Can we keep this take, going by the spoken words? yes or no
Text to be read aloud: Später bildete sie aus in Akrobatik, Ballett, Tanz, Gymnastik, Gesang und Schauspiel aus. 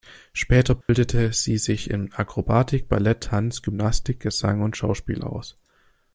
no